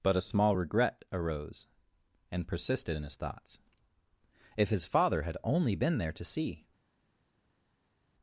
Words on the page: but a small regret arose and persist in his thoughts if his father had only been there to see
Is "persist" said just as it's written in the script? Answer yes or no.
no